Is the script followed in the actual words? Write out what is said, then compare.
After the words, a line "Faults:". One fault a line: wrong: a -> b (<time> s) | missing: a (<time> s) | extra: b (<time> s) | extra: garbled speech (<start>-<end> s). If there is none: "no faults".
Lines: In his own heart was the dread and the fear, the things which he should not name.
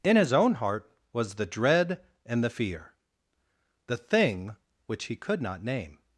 In his own heart was the dread and the fear, the thing which he could not name.
Faults:
wrong: things -> thing (4.0 s)
wrong: should -> could (5.2 s)